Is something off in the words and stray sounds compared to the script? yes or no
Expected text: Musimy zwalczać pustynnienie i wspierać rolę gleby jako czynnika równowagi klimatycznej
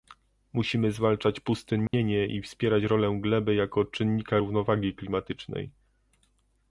yes